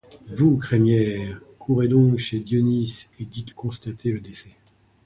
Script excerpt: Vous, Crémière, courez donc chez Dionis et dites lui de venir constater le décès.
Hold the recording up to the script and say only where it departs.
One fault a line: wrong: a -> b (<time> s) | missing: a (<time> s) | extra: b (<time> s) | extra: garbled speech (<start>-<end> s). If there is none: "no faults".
missing: lui de venir (3.5 s)